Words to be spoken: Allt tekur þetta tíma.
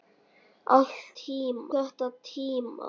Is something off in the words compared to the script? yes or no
yes